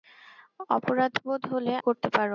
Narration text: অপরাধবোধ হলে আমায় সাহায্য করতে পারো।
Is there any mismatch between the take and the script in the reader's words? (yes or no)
yes